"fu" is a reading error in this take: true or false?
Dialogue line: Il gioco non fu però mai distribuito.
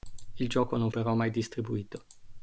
true